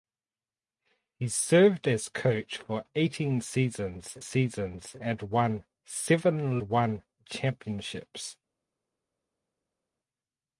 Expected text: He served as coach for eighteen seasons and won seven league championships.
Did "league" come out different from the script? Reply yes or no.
yes